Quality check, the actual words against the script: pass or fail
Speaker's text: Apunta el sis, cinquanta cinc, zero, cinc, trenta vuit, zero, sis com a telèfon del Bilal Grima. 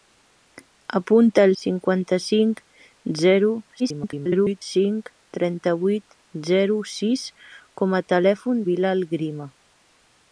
fail